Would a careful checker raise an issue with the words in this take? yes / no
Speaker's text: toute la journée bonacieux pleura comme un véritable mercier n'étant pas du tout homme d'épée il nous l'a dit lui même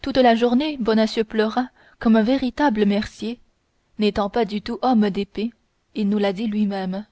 no